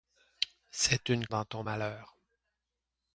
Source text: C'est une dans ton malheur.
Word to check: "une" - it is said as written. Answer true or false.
true